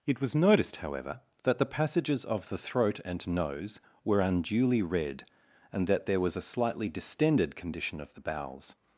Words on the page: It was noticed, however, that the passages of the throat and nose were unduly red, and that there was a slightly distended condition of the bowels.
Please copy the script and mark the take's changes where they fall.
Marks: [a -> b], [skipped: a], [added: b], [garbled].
It was noticed, however, that the passages of the throat and nose were unduly red, and that there was a slightly distended condition of the bowels.